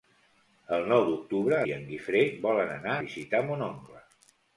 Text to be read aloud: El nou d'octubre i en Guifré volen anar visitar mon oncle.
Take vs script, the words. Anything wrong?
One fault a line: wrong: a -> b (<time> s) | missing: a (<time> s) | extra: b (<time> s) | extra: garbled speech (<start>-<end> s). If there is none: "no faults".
no faults